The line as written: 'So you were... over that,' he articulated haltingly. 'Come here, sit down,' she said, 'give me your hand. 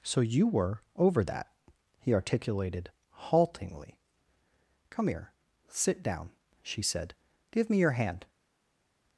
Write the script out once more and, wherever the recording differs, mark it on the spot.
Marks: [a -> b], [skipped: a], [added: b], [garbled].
'So you were... over that,' he articulated haltingly. 'Come here, sit down,' she said, 'give me your hand.